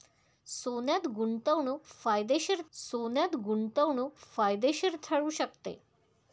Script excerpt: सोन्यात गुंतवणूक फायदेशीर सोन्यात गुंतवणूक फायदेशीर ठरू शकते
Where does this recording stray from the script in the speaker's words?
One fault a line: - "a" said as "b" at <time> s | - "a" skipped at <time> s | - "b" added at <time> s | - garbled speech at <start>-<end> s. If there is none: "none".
none